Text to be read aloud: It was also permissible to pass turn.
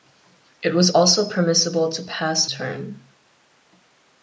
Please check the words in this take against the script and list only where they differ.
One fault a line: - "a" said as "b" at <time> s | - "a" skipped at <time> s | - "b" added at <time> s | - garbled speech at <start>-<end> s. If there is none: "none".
none